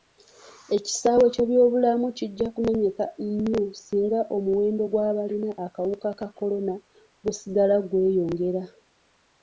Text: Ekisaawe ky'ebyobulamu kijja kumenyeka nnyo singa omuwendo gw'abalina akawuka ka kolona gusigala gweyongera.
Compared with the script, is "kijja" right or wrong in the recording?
right